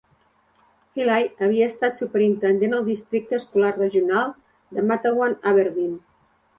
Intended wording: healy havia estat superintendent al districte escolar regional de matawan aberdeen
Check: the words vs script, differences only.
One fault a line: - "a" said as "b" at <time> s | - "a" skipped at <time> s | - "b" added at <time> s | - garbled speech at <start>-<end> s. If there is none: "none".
none